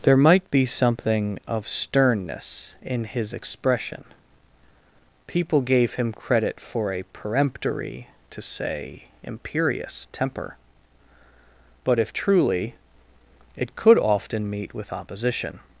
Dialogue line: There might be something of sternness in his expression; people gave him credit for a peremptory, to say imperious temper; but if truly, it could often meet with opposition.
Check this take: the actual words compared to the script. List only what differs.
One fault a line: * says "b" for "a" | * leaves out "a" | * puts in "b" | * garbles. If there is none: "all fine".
all fine